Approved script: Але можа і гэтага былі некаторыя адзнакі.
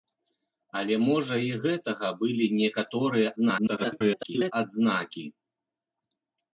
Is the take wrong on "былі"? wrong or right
right